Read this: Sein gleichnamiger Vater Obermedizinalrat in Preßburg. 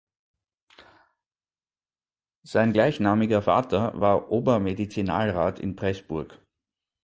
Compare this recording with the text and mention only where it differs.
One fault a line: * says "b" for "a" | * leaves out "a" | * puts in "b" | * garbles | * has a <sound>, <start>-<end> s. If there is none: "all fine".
* puts in "war"